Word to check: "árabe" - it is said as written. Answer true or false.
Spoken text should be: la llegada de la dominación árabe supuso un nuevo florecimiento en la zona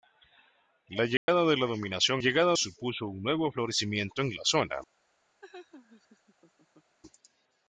false